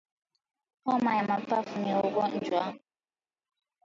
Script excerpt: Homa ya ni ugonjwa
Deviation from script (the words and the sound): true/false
true